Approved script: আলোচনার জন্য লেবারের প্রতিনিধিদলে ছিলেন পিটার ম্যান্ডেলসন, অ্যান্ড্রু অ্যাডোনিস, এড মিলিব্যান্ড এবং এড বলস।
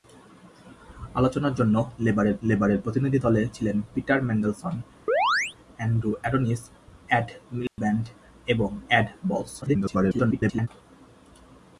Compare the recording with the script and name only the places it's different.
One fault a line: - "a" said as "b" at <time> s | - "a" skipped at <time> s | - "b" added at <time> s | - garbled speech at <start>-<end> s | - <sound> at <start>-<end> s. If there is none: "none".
- "লেবারের" added at 2.4 s
- chirp at 5.1-5.6 s
- dropout at 7.7-7.8 s
- garbled speech at 9.6-10.7 s